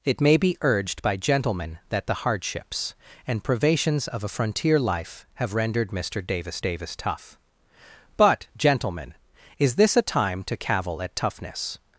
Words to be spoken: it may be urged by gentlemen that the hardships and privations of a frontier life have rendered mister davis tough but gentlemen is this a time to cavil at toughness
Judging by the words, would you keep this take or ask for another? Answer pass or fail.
fail